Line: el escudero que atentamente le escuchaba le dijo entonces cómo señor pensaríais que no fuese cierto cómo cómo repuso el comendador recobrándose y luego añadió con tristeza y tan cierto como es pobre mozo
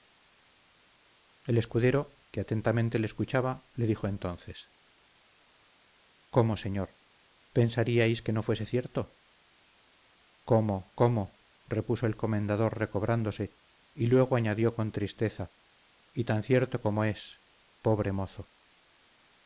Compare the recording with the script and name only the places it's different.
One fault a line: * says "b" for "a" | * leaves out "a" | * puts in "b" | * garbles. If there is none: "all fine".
all fine